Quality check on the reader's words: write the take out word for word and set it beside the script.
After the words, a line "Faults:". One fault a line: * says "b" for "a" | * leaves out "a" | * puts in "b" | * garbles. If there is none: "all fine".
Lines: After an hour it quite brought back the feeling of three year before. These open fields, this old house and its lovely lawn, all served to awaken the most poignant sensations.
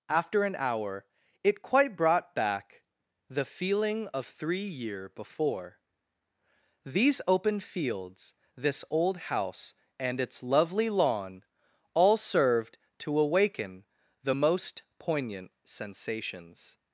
After an hour it quite brought back the feeling of three year before. These open fields, this old house and its lovely lawn, all served to awaken the most poignant sensations.
Faults:
all fine